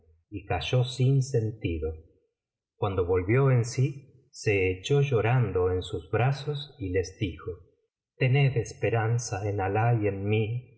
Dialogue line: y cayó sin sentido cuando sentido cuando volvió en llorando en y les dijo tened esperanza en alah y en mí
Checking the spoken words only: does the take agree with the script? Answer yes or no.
no